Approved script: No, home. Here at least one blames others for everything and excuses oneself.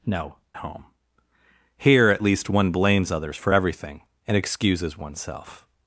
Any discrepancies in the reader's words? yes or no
no